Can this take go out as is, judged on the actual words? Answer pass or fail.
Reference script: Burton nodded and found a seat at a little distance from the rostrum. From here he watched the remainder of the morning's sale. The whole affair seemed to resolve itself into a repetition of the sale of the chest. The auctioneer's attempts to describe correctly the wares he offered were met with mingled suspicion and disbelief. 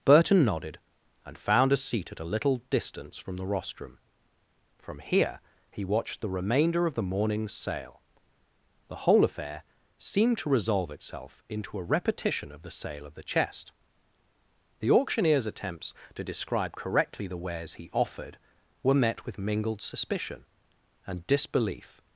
pass